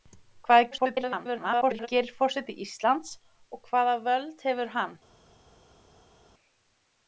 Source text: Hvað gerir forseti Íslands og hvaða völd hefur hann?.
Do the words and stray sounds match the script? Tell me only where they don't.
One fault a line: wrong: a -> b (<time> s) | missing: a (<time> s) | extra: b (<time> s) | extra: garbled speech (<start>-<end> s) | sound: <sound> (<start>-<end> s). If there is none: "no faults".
extra: garbled speech (0.7-1.9 s)